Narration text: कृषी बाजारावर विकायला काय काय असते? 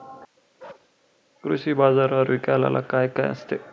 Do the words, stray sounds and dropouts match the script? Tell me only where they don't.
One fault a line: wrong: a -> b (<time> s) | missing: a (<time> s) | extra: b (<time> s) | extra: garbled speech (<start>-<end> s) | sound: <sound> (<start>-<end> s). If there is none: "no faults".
sound: bark (0.6-0.9 s)